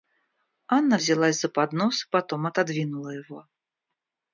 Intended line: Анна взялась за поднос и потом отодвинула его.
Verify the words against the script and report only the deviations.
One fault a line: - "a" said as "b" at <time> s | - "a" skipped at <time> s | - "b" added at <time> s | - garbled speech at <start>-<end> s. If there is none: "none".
none